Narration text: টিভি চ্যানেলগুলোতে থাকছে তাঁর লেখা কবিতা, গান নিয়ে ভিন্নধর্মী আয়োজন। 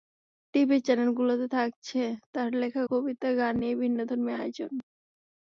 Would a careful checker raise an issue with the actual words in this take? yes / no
no